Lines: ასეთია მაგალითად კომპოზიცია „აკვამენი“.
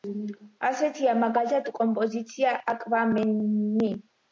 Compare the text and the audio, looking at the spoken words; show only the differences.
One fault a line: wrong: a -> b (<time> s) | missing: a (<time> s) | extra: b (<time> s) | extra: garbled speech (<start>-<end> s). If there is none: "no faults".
no faults